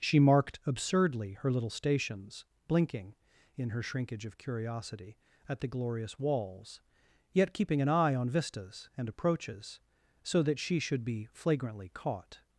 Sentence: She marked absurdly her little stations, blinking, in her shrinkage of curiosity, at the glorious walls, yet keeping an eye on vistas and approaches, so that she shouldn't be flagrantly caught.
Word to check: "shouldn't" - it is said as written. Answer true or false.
false